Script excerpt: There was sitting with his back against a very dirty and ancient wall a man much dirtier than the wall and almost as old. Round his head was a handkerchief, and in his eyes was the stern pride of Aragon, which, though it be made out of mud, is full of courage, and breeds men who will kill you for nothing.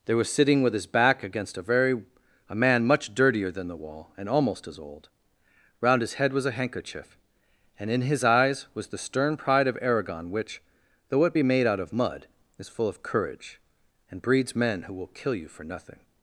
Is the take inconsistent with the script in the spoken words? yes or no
yes